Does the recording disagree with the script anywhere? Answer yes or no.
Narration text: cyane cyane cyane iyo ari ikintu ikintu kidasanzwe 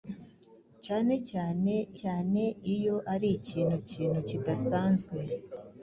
no